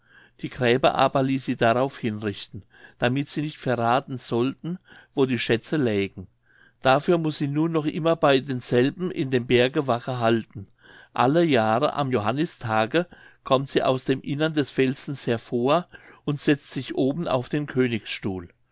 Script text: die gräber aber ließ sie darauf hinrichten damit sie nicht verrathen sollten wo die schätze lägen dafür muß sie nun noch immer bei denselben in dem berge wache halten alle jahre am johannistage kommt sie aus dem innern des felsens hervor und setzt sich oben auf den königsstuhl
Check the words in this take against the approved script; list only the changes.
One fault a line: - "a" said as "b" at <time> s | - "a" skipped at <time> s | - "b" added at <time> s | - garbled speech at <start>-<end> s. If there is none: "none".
none